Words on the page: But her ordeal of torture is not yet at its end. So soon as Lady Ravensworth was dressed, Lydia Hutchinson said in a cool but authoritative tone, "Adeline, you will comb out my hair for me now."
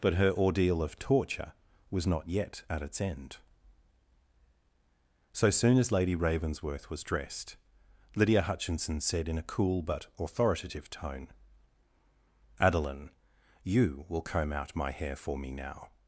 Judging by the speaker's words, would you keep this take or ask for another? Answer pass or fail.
fail